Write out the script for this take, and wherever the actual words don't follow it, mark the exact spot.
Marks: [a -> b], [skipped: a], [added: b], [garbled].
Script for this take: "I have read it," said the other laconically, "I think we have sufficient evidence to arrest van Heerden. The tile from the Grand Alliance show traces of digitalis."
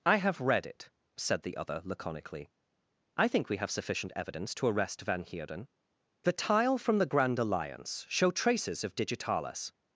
"I have read it," said the other laconically, "I think we have sufficient evidence to arrest van Heerden. The tile from the Grand Alliance show traces of digitalis."